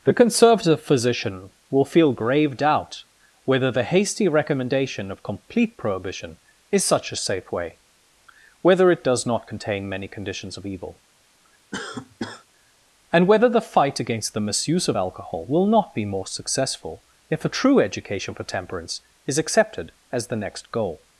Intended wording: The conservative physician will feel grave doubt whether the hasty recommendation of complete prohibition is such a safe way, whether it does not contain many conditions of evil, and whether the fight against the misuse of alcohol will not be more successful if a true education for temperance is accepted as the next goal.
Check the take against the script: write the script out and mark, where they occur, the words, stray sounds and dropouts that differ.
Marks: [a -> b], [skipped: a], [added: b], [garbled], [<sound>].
The conservative physician will feel grave doubt whether the hasty recommendation of complete prohibition is such a safe way, whether it does not contain many conditions of evil, [cough] and whether the fight against the misuse of alcohol will not be more successful if a true education for temperance is accepted as the next goal.